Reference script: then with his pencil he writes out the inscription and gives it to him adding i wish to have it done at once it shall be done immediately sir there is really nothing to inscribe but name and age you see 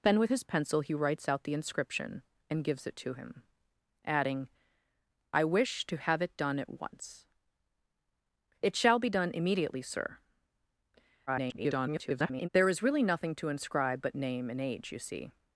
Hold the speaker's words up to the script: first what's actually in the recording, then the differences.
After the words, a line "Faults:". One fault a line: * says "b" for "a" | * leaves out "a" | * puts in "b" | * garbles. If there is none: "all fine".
then with his pencil he writes out the inscription and gives it to him adding i wish to have it done at once it shall be done immediately sir [garbled] there is really nothing to inscribe but name and age you see
Faults:
* garbles